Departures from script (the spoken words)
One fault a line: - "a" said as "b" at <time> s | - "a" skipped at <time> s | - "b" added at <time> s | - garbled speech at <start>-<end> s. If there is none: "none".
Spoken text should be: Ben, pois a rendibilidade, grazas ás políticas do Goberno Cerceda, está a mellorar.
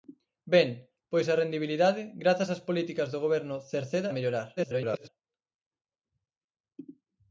- "está" skipped at 4.1 s
- garbled speech at 4.6-5.1 s